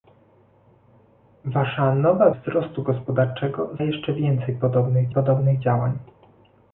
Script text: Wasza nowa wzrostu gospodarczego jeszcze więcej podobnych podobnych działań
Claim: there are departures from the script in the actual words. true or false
false